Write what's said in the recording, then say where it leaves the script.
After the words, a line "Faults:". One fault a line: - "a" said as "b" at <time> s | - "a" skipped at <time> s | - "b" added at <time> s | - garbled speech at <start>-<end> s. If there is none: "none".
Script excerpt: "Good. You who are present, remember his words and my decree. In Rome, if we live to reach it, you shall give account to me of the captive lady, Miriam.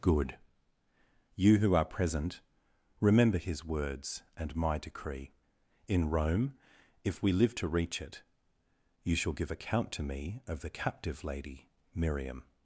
"Good. You who are present, remember his words and my decree. In Rome, if we live to reach it, you shall give account to me of the captive lady, Miriam.
Faults:
none